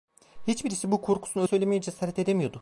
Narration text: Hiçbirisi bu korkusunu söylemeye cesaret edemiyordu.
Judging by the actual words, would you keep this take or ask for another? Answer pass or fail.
pass